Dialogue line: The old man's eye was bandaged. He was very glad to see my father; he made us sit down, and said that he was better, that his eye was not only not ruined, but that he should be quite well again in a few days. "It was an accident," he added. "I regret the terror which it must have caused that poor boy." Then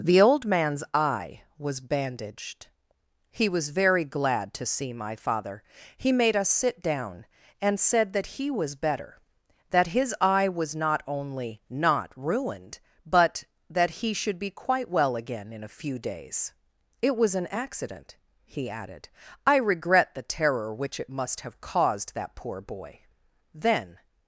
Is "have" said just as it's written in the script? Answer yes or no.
yes